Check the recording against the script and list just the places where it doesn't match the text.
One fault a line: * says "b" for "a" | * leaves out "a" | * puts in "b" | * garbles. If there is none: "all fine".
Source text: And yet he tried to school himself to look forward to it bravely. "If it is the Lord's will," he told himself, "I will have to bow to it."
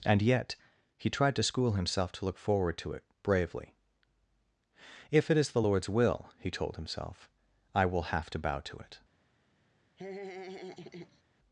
all fine